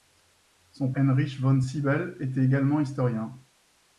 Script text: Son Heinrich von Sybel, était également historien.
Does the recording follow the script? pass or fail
pass